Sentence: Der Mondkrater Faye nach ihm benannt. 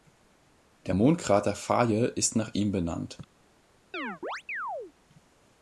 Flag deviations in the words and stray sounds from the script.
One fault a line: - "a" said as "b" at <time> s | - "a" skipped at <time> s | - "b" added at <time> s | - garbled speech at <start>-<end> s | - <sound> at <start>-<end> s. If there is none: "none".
- "ist" added at 2.0 s
- chirp at 3.9-4.9 s